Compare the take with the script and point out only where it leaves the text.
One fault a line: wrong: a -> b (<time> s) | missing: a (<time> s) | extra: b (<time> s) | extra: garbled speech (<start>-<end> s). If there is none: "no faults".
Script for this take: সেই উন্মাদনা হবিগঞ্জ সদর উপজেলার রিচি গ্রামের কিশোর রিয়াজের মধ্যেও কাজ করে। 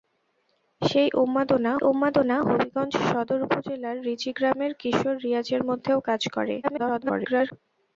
extra: উন্মাদনা (1.8 s)
extra: garbled speech (6.6-7.5 s)